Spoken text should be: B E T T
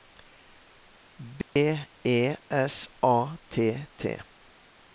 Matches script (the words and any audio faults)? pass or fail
fail